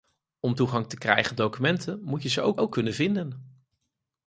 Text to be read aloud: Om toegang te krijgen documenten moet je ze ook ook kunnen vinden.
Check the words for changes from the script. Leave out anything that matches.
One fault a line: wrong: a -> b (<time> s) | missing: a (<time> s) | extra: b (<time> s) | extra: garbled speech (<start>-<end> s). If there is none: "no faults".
no faults